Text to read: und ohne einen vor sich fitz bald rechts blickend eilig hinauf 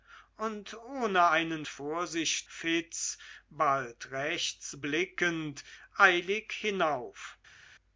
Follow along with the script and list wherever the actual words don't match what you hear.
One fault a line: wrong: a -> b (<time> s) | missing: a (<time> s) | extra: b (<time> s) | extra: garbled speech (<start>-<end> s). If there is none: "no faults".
no faults